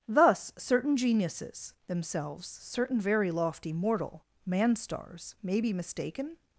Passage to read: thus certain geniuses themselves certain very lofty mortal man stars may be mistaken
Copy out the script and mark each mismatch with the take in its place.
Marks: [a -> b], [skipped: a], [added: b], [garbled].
thus certain geniuses themselves certain very lofty mortal man stars may be mistaken